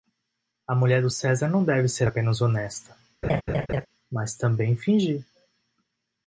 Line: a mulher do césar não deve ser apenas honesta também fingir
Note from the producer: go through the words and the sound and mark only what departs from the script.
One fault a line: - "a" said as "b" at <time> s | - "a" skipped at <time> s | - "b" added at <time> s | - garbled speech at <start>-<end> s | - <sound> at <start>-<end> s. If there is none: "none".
- laugh at 3.2-3.9 s
- "mas" added at 4.1 s